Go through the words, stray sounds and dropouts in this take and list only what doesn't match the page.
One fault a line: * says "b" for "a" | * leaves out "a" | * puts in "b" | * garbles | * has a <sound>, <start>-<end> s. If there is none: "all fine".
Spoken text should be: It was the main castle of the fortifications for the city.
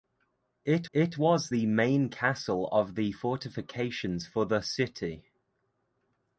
* puts in "it"